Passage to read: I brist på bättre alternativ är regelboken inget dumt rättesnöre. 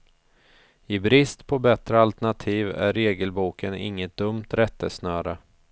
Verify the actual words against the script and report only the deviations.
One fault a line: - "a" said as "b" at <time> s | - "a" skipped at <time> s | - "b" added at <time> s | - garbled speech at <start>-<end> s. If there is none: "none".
none